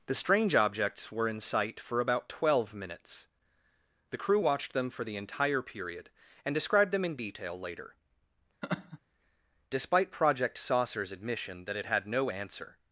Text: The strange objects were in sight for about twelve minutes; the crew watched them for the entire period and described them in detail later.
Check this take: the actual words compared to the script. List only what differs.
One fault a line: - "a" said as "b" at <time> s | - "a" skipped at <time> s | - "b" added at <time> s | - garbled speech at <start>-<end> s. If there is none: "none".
- "Despite Project Saucer's admission that it had no answer" added at 9.7 s